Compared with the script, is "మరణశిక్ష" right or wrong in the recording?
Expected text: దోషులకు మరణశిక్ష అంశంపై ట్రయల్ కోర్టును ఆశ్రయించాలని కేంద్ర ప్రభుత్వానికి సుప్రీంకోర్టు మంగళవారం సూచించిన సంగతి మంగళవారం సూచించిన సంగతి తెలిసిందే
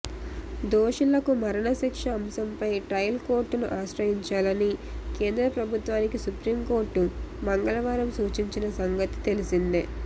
right